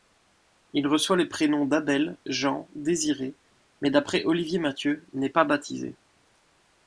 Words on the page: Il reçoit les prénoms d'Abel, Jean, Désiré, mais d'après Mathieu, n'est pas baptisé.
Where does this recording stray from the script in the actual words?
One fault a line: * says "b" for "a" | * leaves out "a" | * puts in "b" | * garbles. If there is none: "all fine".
* puts in "Olivier"